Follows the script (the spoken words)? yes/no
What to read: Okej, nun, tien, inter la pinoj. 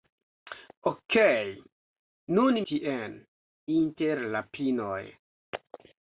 yes